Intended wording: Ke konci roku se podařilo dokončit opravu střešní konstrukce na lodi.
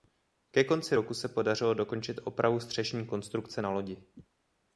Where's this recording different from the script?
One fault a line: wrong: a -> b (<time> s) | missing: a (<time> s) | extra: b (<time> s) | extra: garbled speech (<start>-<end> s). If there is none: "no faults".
no faults